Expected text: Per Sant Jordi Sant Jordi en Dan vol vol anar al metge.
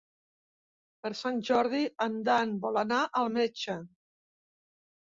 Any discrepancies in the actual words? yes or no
yes